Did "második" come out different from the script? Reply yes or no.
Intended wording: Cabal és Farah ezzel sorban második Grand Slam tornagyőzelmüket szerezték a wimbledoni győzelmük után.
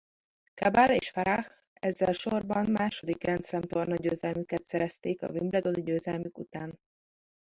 no